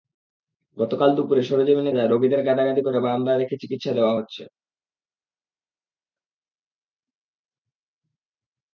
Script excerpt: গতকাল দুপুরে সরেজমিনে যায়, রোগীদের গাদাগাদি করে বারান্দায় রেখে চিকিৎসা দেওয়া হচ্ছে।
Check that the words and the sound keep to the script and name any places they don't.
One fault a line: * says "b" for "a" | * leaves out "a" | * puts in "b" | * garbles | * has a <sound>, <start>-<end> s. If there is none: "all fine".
all fine